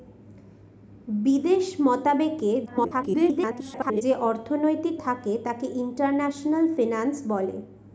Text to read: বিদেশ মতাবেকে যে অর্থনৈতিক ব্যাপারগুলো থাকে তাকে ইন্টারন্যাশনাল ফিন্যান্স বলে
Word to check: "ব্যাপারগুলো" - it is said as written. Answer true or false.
false